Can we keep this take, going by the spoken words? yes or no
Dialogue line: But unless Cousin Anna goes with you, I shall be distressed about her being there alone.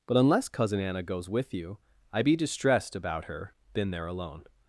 no